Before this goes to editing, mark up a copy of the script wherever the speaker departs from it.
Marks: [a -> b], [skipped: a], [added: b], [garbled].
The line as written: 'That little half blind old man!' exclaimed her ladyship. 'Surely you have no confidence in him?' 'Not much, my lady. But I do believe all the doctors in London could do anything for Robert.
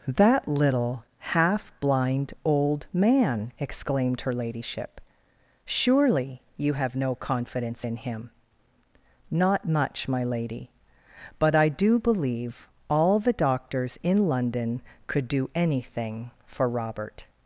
'That little half blind old man!' exclaimed her ladyship. 'Surely you have no confidence in him?' 'Not much, my lady. But I do believe all the doctors in London could do anything for Robert.